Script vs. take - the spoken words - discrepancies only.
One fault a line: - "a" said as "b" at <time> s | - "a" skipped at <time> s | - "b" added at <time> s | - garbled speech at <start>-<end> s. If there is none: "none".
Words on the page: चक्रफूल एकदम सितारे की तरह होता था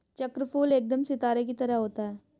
- "था" said as "है" at 2.0 s